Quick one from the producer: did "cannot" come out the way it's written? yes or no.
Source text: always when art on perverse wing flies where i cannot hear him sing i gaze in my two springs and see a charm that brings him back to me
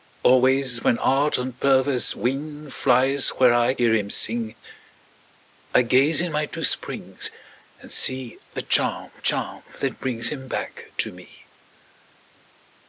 no